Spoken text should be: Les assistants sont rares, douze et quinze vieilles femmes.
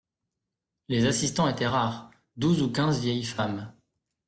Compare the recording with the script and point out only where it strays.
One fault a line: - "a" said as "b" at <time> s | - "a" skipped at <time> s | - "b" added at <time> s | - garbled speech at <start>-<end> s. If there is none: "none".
- "sont" said as "étaient" at 1.5 s
- "et" said as "ou" at 2.6 s